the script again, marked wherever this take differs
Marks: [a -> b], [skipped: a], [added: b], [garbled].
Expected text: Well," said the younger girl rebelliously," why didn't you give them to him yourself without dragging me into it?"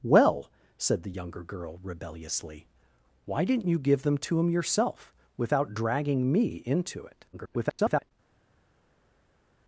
Well," said the younger girl rebelliously," why didn't you give them to him yourself without dragging me into it?" [garbled]